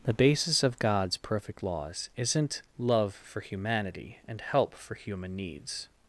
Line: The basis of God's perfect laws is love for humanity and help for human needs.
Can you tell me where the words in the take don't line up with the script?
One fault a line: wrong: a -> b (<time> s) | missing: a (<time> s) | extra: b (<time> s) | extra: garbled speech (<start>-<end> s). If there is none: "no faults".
wrong: is -> isn't (2.2 s)